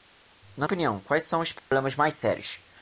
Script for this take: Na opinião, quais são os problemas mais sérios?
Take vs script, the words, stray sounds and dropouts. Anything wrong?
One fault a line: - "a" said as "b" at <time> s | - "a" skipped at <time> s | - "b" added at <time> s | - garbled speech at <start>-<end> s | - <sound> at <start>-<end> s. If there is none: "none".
- dropout at 1.6-1.7 s